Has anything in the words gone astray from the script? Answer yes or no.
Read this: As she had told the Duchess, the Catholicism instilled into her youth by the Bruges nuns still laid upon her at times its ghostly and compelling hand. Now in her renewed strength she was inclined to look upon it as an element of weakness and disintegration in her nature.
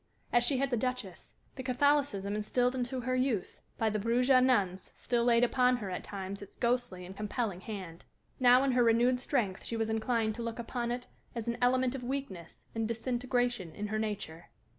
yes